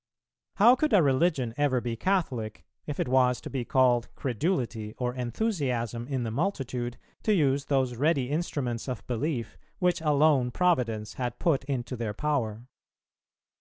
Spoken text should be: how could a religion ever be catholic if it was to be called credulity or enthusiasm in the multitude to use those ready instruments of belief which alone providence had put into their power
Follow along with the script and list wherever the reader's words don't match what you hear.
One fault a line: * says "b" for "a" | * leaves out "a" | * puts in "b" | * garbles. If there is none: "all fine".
all fine